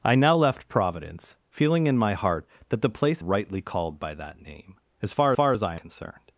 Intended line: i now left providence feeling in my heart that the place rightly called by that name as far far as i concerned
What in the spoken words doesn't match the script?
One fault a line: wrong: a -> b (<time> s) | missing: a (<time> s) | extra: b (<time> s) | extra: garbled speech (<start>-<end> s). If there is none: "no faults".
no faults